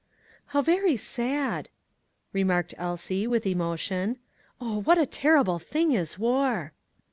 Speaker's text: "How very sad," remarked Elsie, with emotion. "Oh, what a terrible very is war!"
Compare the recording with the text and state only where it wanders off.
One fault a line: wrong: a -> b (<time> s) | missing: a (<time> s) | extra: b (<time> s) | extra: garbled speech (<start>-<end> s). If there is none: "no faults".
wrong: very -> thing (5.6 s)